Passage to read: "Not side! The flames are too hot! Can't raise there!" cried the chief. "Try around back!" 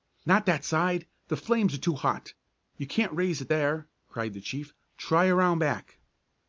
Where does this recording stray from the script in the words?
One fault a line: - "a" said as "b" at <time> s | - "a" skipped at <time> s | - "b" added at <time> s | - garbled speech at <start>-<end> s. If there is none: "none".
- "that" added at 0.5 s
- "You" added at 2.8 s
- "it" added at 3.4 s